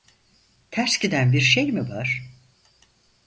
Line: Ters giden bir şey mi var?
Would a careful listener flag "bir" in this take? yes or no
no